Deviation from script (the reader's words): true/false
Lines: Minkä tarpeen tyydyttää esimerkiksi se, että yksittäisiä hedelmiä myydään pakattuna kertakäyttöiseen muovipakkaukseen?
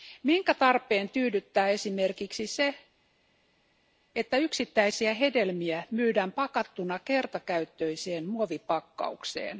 false